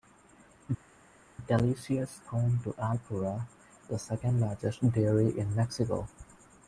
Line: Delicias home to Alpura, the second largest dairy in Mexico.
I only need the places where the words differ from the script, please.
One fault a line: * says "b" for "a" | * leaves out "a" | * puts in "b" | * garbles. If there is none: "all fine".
all fine